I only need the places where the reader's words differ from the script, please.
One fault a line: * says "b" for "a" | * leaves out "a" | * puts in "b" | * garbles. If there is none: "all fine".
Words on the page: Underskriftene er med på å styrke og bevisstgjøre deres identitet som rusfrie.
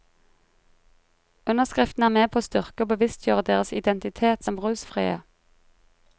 all fine